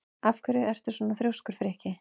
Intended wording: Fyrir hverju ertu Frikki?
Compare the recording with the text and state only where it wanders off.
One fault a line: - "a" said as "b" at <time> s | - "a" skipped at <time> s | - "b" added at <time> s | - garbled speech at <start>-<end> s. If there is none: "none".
- "Fyrir" said as "Af" at 0.3 s
- "svona þrjóskur" added at 1.0 s